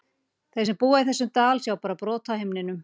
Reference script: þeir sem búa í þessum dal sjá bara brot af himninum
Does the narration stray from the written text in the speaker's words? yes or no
no